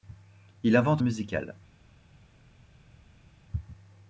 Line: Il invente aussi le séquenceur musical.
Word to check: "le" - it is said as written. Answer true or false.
false